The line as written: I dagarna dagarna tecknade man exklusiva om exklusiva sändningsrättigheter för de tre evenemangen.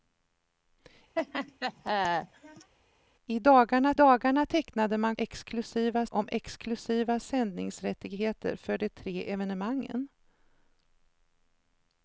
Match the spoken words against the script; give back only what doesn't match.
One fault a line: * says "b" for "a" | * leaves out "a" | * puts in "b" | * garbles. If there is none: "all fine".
all fine